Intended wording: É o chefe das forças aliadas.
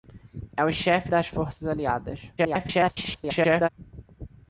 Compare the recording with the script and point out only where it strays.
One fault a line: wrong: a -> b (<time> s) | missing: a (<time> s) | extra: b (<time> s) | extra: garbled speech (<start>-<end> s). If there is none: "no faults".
extra: garbled speech (2.4-3.7 s)